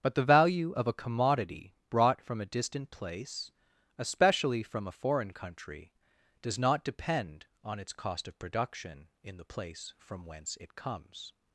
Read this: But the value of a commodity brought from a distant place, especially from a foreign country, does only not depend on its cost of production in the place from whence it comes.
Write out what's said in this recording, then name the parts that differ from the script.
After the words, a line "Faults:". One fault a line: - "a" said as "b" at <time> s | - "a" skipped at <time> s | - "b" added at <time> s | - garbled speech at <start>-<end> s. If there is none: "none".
But the value of a commodity brought from a distant place, especially from a foreign country, does not depend on its cost of production in the place from whence it comes.
Faults:
- "only" skipped at 6.6 s